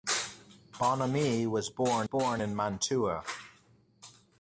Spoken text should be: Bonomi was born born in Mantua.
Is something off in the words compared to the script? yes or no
no